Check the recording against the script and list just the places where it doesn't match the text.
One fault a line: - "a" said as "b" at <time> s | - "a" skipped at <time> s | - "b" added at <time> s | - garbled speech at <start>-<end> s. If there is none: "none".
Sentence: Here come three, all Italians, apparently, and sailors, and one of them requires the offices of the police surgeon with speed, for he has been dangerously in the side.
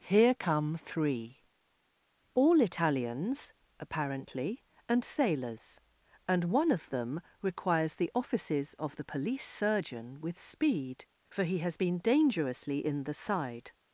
none